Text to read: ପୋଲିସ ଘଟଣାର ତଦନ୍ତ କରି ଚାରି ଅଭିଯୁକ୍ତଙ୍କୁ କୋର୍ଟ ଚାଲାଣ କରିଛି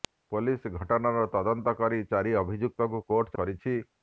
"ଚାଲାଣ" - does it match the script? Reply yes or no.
no